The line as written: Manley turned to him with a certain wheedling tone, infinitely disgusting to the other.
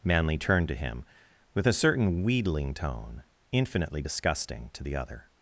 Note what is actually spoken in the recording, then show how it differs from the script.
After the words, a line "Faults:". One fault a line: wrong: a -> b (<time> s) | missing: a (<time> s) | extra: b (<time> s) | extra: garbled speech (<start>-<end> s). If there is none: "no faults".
Manley turned to him with a certain wheedling tone, infinitely disgusting to the other.
Faults:
no faults